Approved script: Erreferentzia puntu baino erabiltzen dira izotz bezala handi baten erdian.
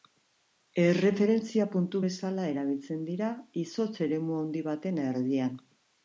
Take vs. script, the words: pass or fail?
fail